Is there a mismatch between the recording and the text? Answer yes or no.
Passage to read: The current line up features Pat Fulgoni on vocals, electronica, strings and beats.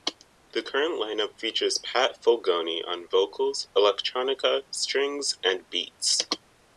no